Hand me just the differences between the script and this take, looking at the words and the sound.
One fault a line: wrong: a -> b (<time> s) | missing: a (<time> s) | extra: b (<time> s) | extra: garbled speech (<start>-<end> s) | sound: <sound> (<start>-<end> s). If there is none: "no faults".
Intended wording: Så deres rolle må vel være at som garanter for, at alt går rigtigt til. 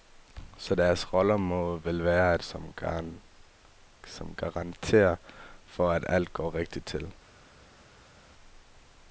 no faults